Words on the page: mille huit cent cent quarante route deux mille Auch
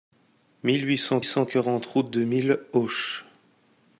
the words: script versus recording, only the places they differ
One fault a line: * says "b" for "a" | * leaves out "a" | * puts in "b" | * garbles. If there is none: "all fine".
all fine